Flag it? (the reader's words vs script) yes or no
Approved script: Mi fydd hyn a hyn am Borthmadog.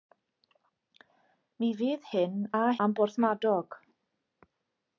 yes